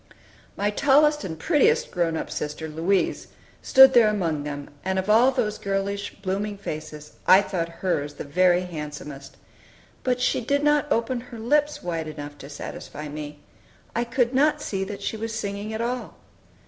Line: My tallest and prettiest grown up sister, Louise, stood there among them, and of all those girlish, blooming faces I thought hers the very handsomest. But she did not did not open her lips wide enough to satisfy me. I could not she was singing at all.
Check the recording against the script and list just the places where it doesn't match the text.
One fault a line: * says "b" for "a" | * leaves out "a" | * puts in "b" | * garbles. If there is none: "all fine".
* leaves out "did not"
* puts in "see that"